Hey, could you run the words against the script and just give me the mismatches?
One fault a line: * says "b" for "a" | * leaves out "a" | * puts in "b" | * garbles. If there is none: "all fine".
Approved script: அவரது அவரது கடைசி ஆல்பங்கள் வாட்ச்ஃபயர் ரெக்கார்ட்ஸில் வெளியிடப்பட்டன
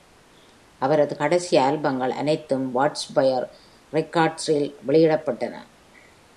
* leaves out "அவரது"
* puts in "அனைத்தும்"